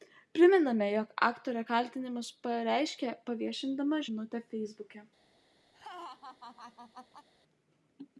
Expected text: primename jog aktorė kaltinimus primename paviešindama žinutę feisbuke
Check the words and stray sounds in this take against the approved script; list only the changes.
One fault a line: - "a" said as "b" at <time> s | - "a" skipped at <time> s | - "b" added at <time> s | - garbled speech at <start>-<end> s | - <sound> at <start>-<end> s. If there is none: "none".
- "primename" said as "pareiškė" at 2.5 s
- laugh at 5.7-7.3 s